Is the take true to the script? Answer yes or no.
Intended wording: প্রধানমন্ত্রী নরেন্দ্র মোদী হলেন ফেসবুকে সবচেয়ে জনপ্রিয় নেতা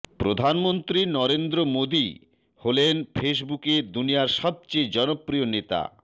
no